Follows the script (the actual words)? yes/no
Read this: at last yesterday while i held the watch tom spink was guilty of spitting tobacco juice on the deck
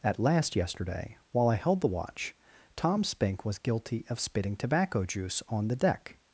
yes